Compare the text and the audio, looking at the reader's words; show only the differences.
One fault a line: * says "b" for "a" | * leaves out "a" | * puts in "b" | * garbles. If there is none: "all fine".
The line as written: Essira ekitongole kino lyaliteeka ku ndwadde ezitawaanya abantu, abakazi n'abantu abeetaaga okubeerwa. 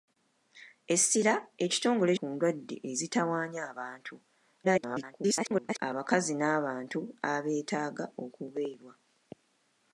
* leaves out "kino lyaliteeka"
* garbles